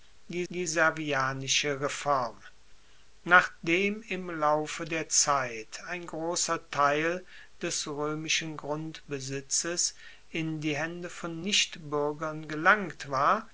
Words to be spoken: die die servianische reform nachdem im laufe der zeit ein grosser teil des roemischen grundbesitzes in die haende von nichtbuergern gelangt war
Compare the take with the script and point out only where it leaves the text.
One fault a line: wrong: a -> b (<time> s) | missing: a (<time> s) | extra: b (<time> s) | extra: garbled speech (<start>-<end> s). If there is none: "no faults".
no faults